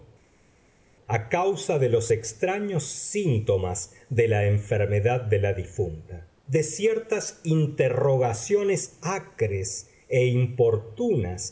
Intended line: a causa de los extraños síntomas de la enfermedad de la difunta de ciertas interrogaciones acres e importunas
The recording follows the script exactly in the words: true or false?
true